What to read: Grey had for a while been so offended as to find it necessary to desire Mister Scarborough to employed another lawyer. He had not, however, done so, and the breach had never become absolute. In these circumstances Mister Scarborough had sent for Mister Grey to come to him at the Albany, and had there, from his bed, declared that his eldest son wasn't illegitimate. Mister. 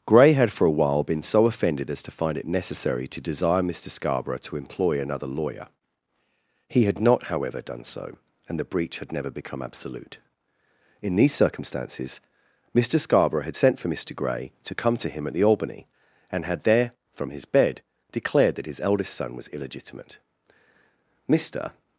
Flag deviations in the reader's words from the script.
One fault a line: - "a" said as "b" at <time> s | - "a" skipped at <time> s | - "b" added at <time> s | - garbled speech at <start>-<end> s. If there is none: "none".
- "employed" said as "employ" at 4.6 s
- "wasn't" said as "was" at 19.4 s